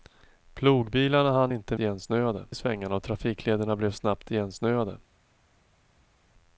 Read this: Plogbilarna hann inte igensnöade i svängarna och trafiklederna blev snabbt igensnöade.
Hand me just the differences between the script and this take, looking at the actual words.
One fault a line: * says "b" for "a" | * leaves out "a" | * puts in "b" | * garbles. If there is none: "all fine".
all fine